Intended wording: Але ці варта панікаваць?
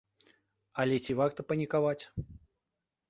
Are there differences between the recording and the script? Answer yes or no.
no